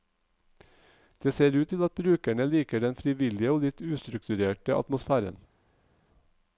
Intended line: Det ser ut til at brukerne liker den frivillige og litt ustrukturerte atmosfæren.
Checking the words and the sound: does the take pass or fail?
pass